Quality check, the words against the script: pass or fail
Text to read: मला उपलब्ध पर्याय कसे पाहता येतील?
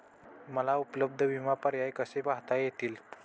fail